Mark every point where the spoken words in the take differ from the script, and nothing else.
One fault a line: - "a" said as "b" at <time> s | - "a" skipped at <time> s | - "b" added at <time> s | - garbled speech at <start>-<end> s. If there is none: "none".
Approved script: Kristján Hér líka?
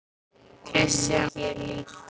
none